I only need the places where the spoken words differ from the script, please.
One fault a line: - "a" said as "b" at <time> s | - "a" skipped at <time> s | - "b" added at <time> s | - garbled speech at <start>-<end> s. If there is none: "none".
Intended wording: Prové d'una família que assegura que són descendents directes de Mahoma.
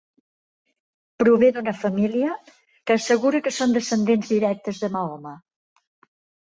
none